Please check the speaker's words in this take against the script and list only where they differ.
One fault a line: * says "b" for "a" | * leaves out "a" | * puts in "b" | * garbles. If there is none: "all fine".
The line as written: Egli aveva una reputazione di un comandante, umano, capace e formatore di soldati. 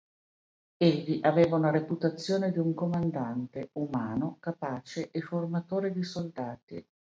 all fine